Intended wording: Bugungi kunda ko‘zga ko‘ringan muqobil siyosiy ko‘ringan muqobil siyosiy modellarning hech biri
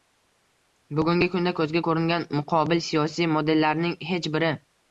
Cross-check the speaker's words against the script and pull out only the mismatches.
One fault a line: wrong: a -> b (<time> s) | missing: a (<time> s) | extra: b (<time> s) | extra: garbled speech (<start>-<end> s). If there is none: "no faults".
missing: ko‘ringan muqobil siyosiy (3.3 s)